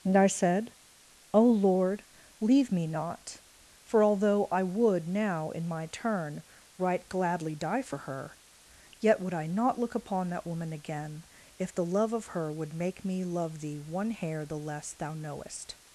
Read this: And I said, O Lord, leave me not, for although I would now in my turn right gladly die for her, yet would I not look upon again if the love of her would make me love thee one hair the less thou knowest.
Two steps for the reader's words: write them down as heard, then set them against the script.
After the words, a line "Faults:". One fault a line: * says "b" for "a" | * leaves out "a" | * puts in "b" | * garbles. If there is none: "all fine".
And I said, O Lord, leave me not, for although I would now in my turn right gladly die for her, yet would I not look upon that woman again if the love of her would make me love thee one hair the less thou knowest.
Faults:
* puts in "that woman"